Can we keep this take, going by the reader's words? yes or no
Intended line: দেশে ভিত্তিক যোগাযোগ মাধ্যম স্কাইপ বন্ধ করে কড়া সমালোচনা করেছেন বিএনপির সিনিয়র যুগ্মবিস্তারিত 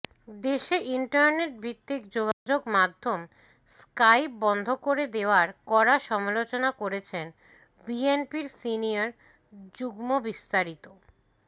no